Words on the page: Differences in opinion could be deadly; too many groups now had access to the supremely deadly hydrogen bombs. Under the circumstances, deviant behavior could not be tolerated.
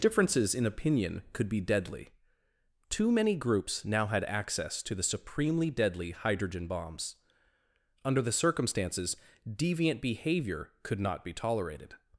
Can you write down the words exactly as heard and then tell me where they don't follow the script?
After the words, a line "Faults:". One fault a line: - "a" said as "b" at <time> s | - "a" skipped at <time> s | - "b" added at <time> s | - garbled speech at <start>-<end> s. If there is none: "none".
Differences in opinion could be deadly; too many groups now had access to the supremely deadly hydrogen bombs. Under the circumstances, deviant behavior could not be tolerated.
Faults:
none